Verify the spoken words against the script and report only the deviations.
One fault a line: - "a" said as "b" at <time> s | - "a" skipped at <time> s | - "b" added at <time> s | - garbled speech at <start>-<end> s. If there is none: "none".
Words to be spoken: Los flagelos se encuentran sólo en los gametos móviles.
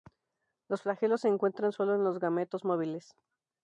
none